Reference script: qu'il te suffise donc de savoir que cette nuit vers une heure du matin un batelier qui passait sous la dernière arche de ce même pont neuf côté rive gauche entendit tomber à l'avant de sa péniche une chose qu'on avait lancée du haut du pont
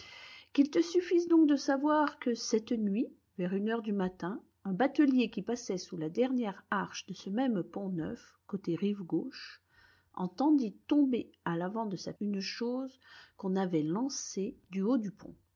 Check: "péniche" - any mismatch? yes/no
yes